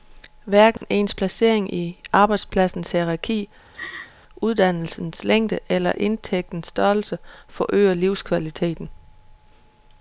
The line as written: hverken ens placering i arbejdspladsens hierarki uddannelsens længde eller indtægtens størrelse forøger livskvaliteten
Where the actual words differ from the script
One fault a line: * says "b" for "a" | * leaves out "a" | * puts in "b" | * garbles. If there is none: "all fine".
all fine